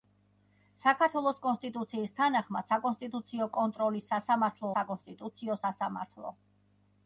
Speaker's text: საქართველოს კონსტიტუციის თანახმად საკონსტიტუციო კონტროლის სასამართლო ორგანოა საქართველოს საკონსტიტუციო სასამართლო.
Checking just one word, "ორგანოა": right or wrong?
wrong